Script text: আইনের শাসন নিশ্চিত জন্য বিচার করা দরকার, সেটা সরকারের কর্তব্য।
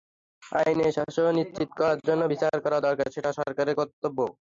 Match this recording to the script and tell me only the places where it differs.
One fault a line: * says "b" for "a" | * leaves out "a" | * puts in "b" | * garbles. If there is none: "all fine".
* puts in "করার"